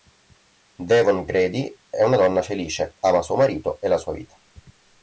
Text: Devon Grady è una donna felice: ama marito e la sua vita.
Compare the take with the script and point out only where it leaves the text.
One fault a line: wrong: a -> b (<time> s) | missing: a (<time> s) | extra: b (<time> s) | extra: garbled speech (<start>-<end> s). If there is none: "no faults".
extra: suo (3.2 s)